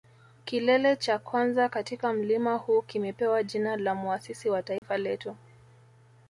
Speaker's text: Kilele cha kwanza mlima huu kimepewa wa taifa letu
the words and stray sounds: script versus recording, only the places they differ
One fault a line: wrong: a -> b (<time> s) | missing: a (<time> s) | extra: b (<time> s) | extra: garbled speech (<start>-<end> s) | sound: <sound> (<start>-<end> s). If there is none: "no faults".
extra: katika (1.7 s)
extra: jina la muasisi (3.4 s)
sound: dropout (4.8-4.8 s)